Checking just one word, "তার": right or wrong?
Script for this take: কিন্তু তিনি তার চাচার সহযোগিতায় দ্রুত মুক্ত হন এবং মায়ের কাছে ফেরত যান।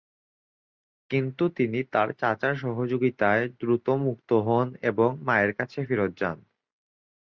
right